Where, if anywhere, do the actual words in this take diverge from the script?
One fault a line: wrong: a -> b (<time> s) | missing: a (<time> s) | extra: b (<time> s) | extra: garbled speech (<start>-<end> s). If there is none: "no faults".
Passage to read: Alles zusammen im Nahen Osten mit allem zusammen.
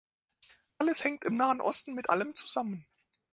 wrong: zusammen -> hängt (1.0 s)